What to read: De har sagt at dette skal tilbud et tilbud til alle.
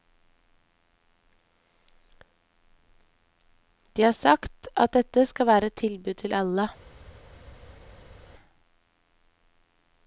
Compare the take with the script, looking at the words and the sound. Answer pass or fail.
fail